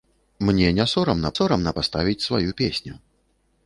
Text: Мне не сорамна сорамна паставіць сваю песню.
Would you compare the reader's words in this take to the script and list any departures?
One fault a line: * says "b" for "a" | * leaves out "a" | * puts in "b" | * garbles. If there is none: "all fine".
all fine